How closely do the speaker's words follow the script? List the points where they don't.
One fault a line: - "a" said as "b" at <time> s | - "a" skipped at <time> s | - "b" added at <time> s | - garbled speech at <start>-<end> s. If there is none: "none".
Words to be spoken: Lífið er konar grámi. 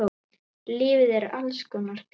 - "alls" added at 1.4 s